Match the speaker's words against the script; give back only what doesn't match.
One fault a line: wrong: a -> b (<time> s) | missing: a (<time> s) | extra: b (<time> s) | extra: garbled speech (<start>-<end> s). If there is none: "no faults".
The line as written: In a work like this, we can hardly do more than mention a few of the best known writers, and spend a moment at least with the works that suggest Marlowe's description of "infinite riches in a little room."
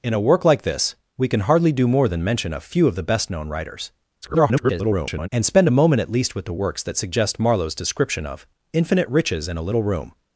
extra: garbled speech (4.2-5.3 s)